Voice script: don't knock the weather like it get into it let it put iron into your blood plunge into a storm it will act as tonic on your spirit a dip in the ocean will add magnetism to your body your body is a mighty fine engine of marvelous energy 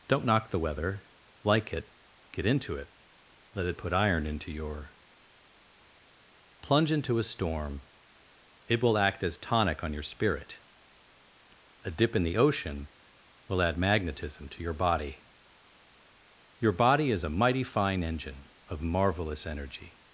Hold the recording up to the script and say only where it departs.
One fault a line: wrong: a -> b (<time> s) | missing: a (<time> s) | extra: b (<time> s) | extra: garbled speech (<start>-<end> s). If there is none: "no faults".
missing: blood (4.9 s)